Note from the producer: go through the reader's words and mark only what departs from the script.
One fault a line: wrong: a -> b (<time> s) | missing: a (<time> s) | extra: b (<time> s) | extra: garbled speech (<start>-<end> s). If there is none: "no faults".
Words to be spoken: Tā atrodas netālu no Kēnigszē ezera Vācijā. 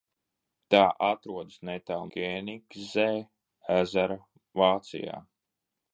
missing: no (2.1 s)